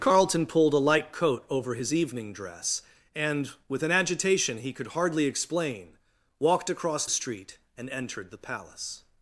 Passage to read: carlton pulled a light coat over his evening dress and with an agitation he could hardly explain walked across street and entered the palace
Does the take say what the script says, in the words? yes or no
yes